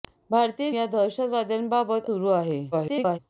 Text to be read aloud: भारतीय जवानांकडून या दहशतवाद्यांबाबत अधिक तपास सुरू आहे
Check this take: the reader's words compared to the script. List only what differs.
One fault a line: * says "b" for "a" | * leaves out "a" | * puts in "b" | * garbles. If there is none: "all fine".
* leaves out "जवानांकडून"
* leaves out "अधिक तपास"
* garbles